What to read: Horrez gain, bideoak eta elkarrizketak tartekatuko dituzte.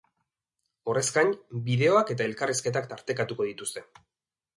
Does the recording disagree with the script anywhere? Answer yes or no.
no